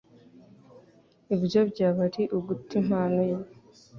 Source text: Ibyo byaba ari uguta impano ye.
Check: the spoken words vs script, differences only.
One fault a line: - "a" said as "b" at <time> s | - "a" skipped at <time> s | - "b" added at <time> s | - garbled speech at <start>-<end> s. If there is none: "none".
none